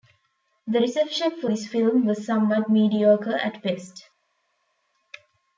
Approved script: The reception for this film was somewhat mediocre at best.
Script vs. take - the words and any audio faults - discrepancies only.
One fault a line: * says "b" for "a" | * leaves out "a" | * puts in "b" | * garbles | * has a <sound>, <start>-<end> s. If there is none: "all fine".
all fine